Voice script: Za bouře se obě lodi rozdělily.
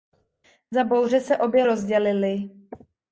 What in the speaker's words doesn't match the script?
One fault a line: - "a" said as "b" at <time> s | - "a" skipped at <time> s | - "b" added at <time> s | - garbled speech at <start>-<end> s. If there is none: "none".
- "lodi" skipped at 1.6 s